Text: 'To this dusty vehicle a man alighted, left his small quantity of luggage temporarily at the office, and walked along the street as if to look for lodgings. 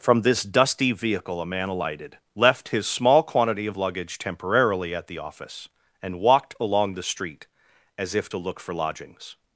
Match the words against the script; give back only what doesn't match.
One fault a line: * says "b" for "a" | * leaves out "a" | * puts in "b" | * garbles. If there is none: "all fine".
* says "From" for "To"